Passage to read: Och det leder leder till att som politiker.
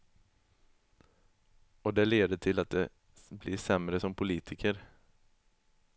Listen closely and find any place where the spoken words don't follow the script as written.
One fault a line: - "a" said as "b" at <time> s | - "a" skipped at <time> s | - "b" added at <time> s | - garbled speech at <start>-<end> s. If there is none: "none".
- "leder" skipped at 2.4 s
- "de blir sämre" added at 2.7 s